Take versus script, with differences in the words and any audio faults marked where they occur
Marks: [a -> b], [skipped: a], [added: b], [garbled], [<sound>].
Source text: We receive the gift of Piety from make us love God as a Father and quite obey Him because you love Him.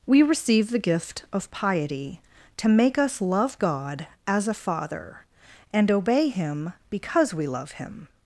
We receive the gift of Piety [from -> to] make us love God as a Father and [skipped: quite] obey Him because [you -> we] love Him.